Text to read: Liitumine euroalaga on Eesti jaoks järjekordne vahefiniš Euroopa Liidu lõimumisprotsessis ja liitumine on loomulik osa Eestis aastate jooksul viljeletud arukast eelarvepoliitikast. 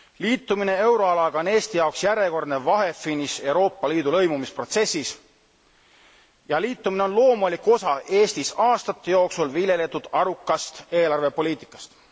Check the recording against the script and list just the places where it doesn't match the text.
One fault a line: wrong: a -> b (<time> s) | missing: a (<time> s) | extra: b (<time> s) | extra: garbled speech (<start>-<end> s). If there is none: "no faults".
no faults